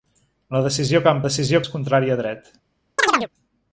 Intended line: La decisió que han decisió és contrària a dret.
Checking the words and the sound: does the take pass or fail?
fail